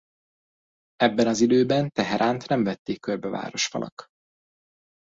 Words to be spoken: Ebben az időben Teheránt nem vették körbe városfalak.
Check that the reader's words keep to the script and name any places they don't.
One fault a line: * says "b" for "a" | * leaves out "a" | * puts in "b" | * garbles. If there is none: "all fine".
all fine